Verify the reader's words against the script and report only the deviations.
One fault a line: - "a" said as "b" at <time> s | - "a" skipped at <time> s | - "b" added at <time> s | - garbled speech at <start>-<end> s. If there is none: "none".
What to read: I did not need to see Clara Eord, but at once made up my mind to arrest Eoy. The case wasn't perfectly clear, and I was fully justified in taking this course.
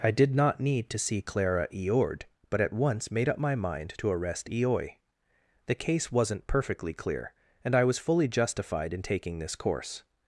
none